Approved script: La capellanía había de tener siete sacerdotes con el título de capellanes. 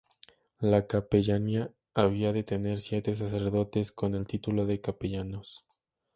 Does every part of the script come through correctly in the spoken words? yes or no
yes